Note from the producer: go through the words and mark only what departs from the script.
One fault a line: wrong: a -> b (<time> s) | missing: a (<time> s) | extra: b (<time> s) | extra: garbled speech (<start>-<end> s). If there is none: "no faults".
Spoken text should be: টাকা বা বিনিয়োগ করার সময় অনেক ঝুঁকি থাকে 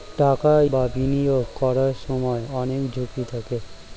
no faults